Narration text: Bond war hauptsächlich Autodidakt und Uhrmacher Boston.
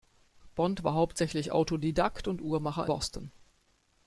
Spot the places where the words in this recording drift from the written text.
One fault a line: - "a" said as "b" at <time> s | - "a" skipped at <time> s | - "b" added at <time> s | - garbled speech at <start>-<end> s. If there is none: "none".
none